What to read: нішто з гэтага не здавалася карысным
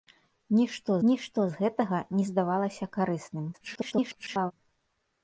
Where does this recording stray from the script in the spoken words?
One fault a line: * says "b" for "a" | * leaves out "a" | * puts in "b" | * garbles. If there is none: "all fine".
* puts in "нішто"
* garbles